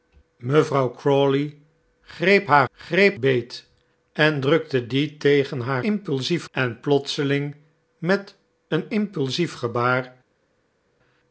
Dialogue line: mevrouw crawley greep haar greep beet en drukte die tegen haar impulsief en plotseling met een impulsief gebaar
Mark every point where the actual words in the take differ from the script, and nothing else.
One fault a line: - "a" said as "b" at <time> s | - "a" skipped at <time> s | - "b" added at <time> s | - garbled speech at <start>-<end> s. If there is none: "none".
none